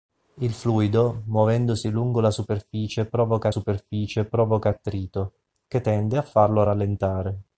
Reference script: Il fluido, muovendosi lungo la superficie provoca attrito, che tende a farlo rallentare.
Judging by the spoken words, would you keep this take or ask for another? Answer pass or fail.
fail